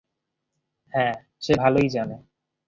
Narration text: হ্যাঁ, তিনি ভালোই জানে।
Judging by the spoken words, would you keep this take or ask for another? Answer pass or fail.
fail